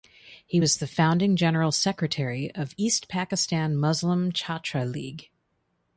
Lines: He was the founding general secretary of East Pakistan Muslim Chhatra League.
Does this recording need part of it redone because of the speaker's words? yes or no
no